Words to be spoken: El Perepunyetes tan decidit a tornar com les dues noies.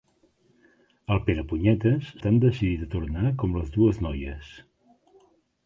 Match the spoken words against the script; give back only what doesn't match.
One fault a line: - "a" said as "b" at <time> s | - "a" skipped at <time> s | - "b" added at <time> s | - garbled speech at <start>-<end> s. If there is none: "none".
none